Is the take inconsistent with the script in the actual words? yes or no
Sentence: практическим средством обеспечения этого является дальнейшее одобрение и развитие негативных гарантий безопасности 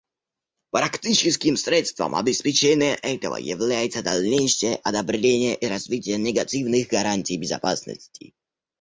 no